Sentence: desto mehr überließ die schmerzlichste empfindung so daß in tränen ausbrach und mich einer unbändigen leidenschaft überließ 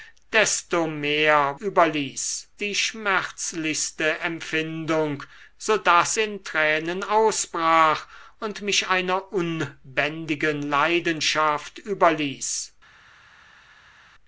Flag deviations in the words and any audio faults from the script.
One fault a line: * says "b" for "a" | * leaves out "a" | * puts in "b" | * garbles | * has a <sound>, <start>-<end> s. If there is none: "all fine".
all fine